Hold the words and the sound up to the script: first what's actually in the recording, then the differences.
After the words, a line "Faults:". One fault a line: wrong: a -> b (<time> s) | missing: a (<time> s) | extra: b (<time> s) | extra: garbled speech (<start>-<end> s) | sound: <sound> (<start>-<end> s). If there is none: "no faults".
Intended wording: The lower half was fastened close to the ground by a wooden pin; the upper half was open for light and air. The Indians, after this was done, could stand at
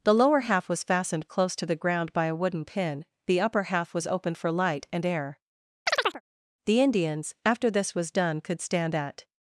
The lower half was fastened close to the ground by a wooden pin; the upper half was open for light and air. The Indians, after this was done, could stand at
Faults:
sound: chirp (5.9-6.2 s)